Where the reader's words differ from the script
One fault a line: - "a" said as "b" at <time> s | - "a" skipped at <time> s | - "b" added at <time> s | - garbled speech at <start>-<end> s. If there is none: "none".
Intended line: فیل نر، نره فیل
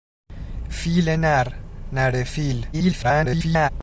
- garbled speech at 2.7-3.7 s